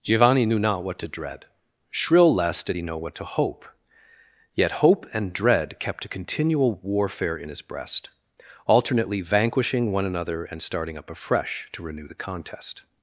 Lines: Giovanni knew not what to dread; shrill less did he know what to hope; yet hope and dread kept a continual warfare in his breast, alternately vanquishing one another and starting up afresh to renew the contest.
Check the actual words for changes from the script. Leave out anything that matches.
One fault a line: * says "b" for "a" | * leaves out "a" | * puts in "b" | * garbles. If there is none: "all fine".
all fine